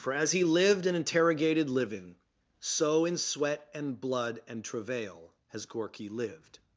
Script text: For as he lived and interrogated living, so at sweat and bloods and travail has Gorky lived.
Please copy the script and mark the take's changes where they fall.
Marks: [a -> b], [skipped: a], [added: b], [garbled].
For as he lived and interrogated living, so [at -> in] sweat and [bloods -> blood] and travail has Gorky lived.